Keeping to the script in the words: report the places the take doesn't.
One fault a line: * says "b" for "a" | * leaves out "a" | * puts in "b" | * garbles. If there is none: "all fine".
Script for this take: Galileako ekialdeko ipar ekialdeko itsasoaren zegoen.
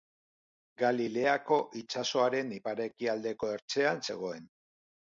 * says "itsasoaren" for "ekialdeko"
* says "ertzean" for "itsasoaren"